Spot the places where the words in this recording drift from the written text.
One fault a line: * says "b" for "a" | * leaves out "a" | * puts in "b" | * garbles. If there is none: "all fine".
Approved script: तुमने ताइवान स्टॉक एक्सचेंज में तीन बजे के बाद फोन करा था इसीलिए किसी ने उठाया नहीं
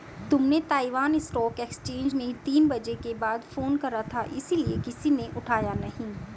all fine